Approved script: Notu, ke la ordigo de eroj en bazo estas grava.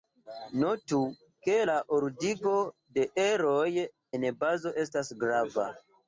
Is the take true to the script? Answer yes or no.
yes